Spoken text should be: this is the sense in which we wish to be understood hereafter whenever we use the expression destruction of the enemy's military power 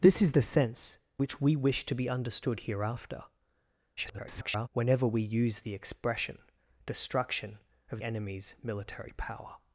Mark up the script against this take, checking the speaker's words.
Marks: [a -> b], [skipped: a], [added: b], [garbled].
this is the sense [skipped: in] which we wish to be understood hereafter [garbled] whenever we use the expression destruction of [skipped: the] enemy's military power